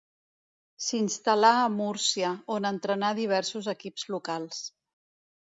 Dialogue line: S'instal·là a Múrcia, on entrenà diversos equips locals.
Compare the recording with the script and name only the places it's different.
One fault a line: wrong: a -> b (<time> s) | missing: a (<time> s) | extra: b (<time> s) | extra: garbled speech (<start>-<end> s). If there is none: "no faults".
no faults